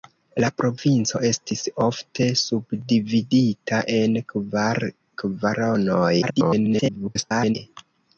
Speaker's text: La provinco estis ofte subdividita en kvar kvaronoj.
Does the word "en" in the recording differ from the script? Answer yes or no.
no